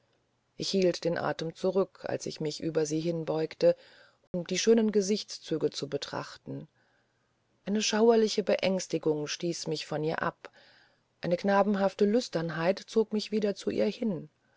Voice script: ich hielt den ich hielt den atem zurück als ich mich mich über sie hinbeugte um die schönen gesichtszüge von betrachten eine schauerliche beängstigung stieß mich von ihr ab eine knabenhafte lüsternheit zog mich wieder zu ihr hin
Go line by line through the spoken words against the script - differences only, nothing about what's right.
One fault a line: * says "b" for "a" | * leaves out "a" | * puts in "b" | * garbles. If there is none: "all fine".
* leaves out "ich hielt den"
* leaves out "mich"
* says "zu" for "von"